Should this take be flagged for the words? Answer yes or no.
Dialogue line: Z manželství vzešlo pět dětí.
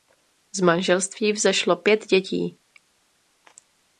no